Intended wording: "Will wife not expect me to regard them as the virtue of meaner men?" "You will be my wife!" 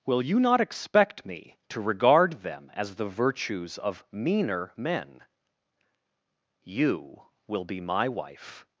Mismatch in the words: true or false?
true